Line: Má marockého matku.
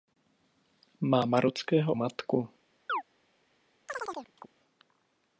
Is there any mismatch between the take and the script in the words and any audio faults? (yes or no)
yes